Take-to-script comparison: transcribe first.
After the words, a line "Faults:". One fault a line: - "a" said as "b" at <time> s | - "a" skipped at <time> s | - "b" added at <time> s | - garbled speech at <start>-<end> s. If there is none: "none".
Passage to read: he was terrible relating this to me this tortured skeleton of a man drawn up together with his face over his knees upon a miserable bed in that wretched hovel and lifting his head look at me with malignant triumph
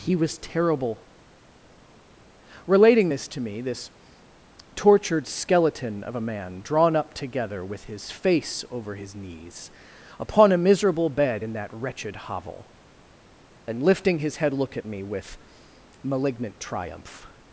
he was terrible relating this to me this tortured skeleton of a man drawn up together with his face over his knees upon a miserable bed in that wretched hovel and lifting his head look at me with malignant triumph
Faults:
none